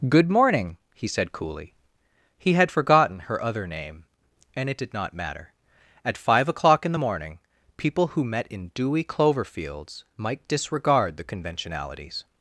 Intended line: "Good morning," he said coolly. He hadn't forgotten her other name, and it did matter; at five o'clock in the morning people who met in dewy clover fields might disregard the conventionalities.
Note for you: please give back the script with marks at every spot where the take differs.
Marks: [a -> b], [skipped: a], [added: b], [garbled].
"Good morning," he said coolly. He [hadn't -> had] forgotten her other name, and it did [added: not] matter; at five o'clock in the morning people who met in dewy clover fields might disregard the conventionalities.